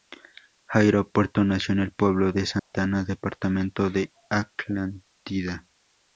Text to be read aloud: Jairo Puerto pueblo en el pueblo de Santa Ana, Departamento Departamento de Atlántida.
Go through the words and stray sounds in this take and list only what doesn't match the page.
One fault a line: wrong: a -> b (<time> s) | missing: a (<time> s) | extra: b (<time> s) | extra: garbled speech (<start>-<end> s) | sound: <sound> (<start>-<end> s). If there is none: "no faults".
wrong: pueblo -> nació (1.4 s)
sound: dropout (2.6-2.7 s)
missing: Departamento (3.9 s)